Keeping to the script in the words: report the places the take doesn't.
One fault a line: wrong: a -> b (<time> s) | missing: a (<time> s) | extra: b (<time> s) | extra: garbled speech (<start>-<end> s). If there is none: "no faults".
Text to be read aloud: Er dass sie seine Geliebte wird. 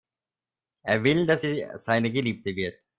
extra: will (1.0 s)